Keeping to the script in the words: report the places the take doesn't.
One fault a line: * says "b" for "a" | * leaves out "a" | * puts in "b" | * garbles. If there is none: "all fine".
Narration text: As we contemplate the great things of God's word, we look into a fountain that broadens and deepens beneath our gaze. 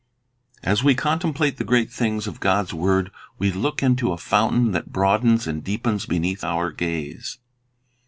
all fine